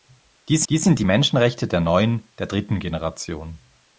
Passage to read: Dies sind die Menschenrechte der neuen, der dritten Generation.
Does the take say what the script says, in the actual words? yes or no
no